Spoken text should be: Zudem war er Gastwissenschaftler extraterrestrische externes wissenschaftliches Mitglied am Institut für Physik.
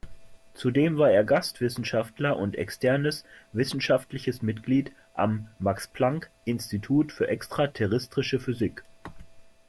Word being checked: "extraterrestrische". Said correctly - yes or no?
no